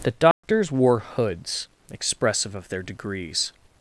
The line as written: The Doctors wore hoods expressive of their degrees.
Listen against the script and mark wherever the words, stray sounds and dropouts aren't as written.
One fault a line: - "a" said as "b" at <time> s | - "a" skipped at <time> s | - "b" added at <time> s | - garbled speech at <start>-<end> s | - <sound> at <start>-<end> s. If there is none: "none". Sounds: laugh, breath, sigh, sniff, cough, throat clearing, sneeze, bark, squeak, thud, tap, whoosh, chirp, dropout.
- dropout at 0.3-0.4 s